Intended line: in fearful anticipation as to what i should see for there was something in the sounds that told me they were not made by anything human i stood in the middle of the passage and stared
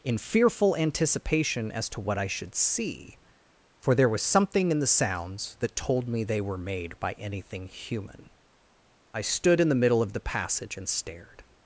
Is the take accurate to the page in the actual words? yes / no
no